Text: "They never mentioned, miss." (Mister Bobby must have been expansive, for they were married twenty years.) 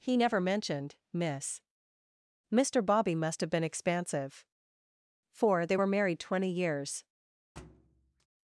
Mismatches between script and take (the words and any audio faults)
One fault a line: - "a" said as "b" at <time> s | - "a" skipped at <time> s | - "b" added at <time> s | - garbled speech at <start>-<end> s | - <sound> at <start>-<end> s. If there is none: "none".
- "They" said as "He" at 0.0 s
- thud at 7.6-8.3 s